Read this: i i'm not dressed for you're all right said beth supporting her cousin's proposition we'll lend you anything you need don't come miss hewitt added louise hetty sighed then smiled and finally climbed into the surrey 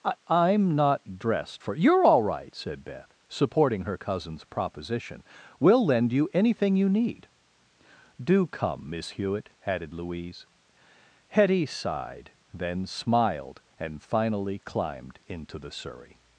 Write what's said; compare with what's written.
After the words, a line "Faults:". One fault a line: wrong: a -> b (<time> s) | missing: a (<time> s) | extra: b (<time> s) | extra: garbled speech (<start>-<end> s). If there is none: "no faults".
i i'm not dressed for you're all right said beth supporting her cousin's proposition we'll lend you anything you need do come miss hewitt added louise hetty sighed then smiled and finally climbed into the surrey
Faults:
wrong: don't -> do (8.2 s)